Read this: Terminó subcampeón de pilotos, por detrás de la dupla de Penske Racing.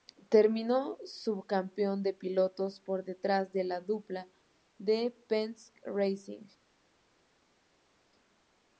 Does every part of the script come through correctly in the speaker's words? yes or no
yes